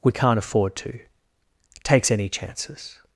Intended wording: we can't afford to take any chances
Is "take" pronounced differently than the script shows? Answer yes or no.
yes